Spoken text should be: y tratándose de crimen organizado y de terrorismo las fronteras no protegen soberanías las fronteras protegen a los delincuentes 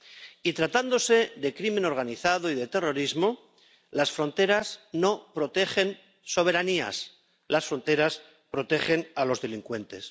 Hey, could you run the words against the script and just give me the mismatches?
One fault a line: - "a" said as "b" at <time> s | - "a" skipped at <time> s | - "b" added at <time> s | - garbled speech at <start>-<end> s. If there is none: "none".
none